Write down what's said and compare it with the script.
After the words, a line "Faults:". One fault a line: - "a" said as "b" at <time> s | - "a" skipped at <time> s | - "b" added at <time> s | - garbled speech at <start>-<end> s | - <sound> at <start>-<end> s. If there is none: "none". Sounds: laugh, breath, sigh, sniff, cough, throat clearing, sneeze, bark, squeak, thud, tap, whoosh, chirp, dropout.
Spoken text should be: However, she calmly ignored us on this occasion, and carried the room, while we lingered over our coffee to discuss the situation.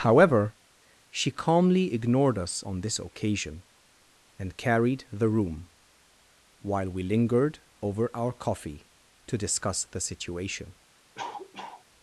However, she calmly ignored us on this occasion, and carried the room, while we lingered over our coffee to discuss the situation.
Faults:
- cough at 11.2-11.9 s